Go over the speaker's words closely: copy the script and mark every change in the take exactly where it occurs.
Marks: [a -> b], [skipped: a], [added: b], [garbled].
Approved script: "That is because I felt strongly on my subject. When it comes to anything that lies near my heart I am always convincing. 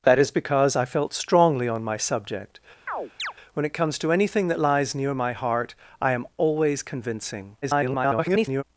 "That is because I felt strongly on my subject. When it comes to anything that lies near my heart I am always convincing. [garbled]